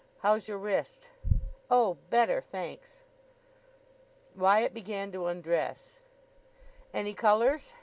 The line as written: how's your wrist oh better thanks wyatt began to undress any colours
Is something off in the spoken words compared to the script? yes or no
no